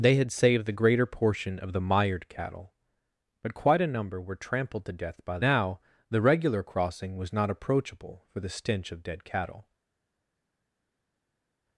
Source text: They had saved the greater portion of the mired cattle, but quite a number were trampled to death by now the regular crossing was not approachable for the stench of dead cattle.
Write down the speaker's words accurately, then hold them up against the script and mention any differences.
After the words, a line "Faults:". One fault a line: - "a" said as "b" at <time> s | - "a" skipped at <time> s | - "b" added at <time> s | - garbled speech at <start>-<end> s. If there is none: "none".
They had saved the greater portion of the mired cattle, but quite a number were trampled to death by now the regular crossing was not approachable for the stench of dead cattle.
Faults:
none